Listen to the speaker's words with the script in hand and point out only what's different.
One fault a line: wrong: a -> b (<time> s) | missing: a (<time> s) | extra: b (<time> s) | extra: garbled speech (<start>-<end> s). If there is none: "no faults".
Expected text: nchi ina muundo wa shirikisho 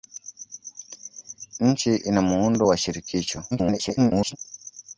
extra: garbled speech (3.5-4.4 s)